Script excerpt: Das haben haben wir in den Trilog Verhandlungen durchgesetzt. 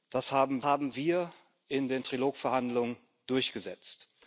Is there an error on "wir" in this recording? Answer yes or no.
no